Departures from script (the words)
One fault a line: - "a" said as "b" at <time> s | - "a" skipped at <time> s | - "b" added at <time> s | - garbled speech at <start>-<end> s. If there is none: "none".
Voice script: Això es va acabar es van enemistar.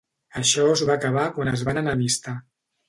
- "quan" added at 1.4 s